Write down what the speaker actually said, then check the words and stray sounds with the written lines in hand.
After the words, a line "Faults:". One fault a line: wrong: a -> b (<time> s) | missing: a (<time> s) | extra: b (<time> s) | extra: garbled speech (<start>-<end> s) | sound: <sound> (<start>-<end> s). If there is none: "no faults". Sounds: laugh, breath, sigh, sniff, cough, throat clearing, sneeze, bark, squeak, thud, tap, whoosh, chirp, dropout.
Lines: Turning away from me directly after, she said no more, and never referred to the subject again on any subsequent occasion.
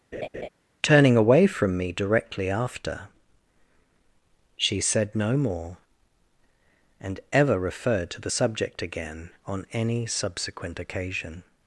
Turning away from me directly after, she said no more, and ever referred to the subject again on any subsequent occasion.
Faults:
sound: laugh (0.1-0.5 s)
wrong: never -> ever (7.3 s)